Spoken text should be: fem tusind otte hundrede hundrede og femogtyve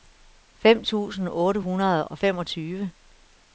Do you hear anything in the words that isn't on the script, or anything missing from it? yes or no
yes